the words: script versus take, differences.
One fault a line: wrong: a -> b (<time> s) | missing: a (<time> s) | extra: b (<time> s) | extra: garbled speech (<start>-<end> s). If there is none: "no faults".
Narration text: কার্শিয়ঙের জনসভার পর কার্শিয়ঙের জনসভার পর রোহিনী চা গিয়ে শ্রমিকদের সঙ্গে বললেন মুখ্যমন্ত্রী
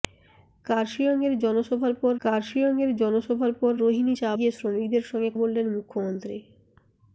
no faults